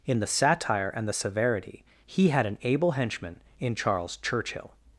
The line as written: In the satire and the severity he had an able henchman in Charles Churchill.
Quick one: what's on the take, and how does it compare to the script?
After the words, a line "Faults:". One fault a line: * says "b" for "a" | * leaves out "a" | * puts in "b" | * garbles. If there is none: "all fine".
In the satire and the severity he had an able henchman in Charles Churchill.
Faults:
all fine